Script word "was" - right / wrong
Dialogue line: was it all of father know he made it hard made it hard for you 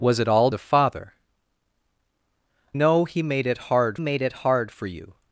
right